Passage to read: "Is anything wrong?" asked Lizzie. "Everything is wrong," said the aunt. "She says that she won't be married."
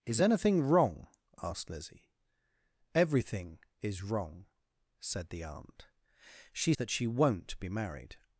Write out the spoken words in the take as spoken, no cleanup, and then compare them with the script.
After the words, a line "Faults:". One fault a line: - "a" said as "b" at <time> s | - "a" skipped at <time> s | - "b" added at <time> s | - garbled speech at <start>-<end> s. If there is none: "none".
"Is anything wrong?" asked Lizzie. "Everything is wrong," said the aunt. "She that she won't be married."
Faults:
- "says" skipped at 6.7 s